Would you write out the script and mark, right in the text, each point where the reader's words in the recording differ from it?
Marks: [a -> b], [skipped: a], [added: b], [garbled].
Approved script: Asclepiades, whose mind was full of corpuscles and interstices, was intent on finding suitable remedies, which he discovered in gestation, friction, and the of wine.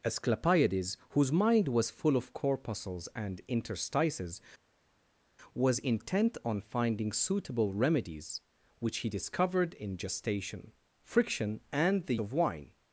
Asclepiades, whose mind was full of corpuscles and interstices, was intent on finding suitable remedies, which he discovered in gestation, friction, and the of wine.